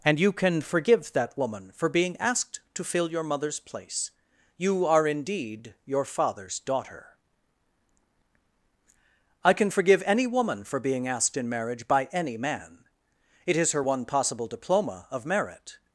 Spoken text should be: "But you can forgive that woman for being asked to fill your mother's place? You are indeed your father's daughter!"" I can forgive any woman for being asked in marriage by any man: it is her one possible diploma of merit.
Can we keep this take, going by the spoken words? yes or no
no